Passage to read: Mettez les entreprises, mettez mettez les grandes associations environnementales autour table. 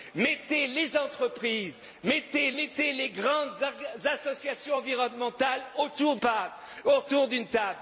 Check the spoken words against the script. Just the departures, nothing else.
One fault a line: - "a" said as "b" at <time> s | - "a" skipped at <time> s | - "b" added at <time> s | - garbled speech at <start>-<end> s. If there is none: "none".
none